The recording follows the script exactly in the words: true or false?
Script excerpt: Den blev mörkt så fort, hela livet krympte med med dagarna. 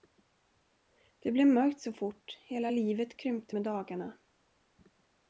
false